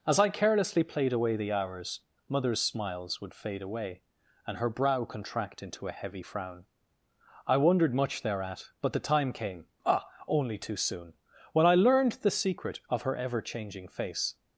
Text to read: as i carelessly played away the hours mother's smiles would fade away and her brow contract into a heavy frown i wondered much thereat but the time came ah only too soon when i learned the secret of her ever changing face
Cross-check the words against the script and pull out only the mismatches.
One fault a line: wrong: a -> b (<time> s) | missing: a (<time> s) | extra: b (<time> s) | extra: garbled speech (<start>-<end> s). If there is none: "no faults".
no faults